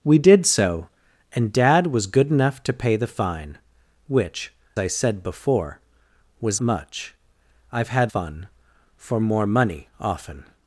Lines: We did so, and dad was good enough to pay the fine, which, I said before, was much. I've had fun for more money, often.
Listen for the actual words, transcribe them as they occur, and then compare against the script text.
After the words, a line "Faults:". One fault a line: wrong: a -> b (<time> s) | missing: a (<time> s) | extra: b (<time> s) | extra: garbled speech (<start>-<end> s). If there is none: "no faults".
We did so, and dad was good enough to pay the fine, which, I said before, was much. I've had fun for more money, often.
Faults:
no faults